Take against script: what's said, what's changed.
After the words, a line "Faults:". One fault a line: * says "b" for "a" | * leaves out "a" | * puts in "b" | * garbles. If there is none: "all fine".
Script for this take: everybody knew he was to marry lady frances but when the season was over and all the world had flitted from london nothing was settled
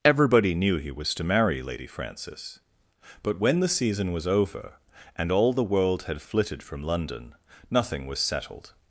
everybody knew he was to marry lady frances but when the season was over and all the world had flitted from london nothing was settled
Faults:
all fine